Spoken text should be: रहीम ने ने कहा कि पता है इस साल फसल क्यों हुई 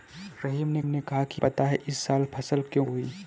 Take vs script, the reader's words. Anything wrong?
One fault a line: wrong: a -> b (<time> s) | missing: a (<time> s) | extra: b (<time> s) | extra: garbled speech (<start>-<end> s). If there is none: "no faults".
no faults